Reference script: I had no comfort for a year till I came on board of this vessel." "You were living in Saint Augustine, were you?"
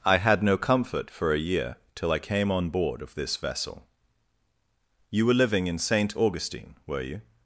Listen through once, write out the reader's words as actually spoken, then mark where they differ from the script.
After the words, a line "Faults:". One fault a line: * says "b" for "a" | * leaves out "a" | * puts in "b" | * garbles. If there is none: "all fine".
I had no comfort for a year till I came on board of this vessel." "You were living in Saint Augustine, were you?"
Faults:
all fine